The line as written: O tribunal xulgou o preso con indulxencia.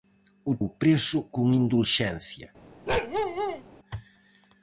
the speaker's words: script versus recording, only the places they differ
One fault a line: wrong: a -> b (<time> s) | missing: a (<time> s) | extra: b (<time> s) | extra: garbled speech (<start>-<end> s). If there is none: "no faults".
missing: tribunal xulgou (0.5 s)